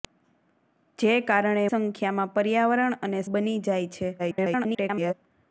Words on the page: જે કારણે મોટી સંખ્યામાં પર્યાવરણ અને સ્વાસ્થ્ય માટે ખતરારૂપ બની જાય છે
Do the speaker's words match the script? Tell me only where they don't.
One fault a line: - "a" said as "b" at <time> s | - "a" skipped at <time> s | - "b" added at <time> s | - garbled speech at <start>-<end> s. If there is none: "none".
- "મોટી" skipped at 1.6 s
- "સ્વાસ્થ્ય માટે ખતરારૂપ" skipped at 3.2 s
- garbled speech at 4.2-5.1 s